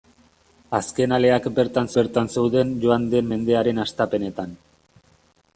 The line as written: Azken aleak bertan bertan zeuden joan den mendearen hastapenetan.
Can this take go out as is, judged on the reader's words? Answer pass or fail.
pass